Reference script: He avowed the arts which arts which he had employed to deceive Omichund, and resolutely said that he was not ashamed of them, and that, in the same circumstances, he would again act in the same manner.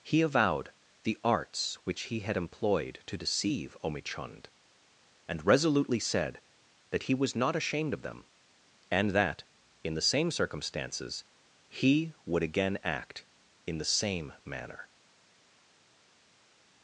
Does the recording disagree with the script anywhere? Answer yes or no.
yes